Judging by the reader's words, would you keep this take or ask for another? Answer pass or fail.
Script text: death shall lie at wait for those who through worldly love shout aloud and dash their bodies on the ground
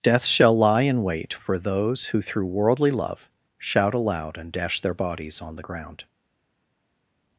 fail